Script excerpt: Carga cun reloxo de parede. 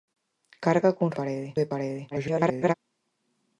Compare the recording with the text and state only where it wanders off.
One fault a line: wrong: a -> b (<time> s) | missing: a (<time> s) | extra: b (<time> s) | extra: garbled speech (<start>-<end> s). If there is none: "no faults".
wrong: reloxo -> parede (1.2 s)
extra: garbled speech (2.1-2.7 s)